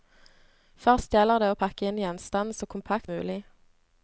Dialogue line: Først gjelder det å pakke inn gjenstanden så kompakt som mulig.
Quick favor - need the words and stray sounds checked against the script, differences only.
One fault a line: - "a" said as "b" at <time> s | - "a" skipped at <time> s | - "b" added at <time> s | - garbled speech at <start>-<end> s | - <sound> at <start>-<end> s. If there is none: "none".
- "som" skipped at 3.1 s